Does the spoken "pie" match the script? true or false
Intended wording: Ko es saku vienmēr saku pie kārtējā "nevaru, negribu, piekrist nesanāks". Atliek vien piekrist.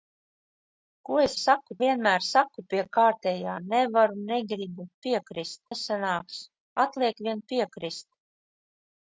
true